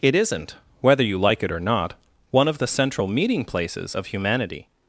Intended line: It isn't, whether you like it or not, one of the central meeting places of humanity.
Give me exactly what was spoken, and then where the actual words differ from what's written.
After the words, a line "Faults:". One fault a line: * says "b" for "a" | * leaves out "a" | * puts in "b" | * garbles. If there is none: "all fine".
It isn't, whether you like it or not, one of the central meeting places of humanity.
Faults:
all fine